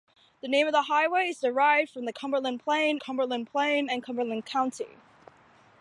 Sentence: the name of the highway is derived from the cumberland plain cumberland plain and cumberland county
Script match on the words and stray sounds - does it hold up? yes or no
yes